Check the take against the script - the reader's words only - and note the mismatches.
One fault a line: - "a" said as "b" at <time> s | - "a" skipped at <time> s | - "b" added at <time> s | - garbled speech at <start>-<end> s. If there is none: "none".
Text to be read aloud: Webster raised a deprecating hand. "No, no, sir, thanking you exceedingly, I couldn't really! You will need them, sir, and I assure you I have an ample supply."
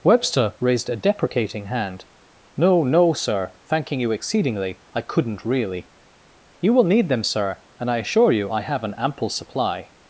none